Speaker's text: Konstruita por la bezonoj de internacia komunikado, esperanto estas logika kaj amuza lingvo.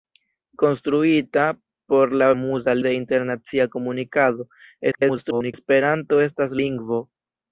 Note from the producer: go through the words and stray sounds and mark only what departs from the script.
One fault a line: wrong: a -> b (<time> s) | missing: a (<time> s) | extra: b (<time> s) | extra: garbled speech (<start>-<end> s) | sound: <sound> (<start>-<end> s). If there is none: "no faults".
wrong: bezonoj -> amuza (2.4 s)
extra: garbled speech (4.9-5.5 s)
missing: logika kaj amuza (6.6 s)